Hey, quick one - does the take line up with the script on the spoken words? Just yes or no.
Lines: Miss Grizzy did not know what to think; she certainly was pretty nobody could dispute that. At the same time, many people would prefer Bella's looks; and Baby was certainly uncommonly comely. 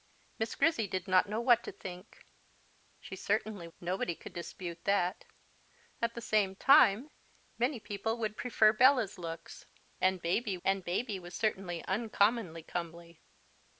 no